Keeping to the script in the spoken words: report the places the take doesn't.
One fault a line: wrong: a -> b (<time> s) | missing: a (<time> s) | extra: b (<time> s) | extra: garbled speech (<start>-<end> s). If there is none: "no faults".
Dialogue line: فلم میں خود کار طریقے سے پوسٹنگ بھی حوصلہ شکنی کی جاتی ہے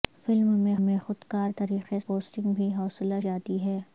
extra: میں (0.8 s)
missing: سے (2.0 s)
missing: شکنی کی (3.2 s)